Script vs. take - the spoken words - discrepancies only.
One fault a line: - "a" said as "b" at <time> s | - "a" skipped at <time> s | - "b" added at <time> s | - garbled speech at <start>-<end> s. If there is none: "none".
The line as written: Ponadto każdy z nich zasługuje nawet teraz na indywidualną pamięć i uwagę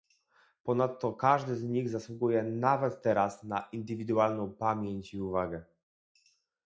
none